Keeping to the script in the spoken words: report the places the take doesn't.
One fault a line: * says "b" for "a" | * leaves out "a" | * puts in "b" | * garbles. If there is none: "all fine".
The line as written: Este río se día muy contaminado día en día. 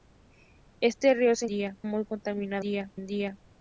all fine